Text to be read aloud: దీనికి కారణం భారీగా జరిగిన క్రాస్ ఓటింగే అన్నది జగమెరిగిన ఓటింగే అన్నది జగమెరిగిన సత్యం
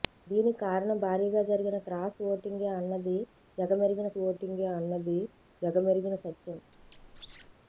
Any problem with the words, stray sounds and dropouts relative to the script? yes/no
yes